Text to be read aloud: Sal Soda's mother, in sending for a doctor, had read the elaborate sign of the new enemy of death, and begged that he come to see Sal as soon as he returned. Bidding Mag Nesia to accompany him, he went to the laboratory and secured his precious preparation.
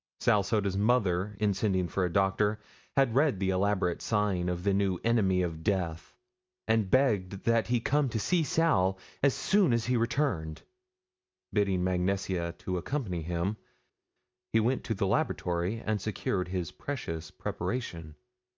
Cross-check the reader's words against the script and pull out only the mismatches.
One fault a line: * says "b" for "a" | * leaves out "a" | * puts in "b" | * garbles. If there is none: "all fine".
all fine